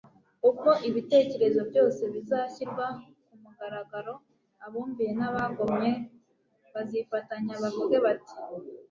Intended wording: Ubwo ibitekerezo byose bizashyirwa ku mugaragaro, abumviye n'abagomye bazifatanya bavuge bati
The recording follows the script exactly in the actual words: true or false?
true